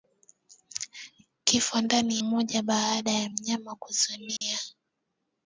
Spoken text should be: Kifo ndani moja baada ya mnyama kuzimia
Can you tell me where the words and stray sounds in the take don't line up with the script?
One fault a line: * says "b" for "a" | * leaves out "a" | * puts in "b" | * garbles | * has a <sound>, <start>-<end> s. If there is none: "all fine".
* has a dropout, 4.4-4.4 s